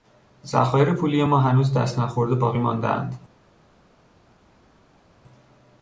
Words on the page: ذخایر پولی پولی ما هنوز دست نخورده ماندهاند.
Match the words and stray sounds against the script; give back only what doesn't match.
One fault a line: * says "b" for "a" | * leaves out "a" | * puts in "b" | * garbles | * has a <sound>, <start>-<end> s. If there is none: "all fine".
* leaves out "پولی"
* puts in "باقی"